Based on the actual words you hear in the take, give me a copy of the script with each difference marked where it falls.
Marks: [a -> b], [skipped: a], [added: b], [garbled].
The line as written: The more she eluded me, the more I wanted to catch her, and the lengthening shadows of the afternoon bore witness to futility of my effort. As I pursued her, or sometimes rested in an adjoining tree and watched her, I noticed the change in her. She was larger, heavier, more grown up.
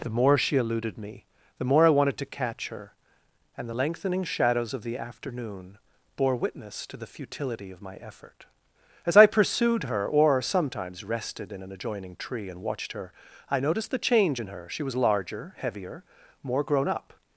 The more she eluded me, the more I wanted to catch her, and the lengthening shadows of the afternoon bore witness to [added: the] futility of my effort. As I pursued her, or sometimes rested in an adjoining tree and watched her, I noticed the change in her. She was larger, heavier, more grown up.